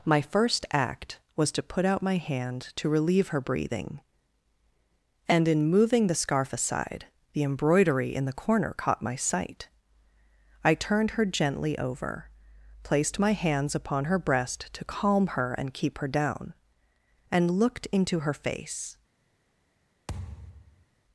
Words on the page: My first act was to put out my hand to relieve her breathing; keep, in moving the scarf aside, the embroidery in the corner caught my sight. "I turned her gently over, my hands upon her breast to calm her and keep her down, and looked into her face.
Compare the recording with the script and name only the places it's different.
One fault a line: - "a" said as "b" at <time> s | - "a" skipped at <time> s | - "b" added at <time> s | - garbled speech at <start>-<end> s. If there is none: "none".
- "keep" said as "and" at 5.3 s
- "placed" added at 12.8 s